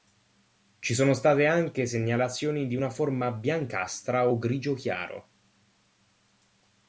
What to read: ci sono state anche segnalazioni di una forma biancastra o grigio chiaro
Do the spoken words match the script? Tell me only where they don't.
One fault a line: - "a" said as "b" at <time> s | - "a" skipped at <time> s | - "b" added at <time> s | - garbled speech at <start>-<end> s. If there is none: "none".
none